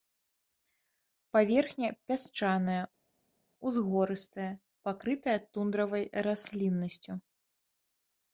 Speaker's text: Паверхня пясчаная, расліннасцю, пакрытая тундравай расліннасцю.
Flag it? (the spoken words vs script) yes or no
yes